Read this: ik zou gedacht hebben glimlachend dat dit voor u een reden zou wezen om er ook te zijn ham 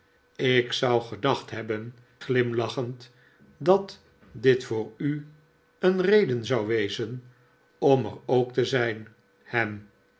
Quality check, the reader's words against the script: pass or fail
pass